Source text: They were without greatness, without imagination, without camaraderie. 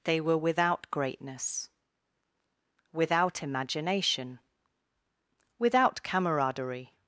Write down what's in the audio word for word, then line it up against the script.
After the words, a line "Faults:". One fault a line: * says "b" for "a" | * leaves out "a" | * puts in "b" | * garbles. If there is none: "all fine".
They were without greatness, without imagination, without camaraderie.
Faults:
all fine